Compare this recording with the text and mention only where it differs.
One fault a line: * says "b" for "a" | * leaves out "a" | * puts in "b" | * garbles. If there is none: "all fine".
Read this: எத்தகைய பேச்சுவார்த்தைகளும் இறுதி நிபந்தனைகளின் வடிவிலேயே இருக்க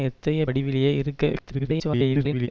* leaves out "பேச்சுவார்த்தைகளும் இறுதி நிபந்தனைகளின்"
* garbles